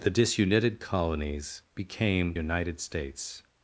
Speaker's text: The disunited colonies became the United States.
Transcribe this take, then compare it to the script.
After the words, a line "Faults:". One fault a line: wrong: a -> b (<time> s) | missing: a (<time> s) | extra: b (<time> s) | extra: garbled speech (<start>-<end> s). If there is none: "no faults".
The disunited colonies became United States.
Faults:
missing: the (2.3 s)